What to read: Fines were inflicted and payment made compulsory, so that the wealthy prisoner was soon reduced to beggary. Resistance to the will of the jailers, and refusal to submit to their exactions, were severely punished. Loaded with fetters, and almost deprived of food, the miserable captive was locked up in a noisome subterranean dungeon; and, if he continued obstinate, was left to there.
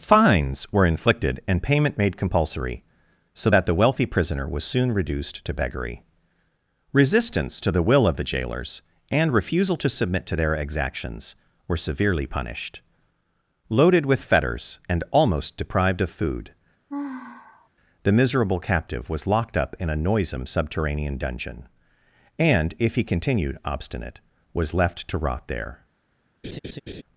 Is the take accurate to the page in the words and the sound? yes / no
no